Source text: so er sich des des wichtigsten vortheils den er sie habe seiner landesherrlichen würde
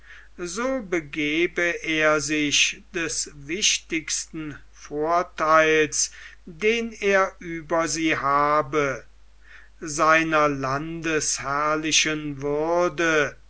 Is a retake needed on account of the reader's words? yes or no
yes